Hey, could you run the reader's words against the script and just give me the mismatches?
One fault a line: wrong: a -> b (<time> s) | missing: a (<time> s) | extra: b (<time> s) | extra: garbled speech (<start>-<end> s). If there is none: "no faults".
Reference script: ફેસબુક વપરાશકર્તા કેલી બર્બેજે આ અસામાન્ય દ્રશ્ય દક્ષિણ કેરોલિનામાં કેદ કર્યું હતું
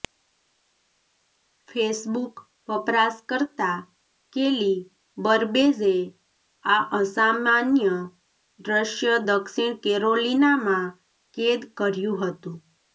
no faults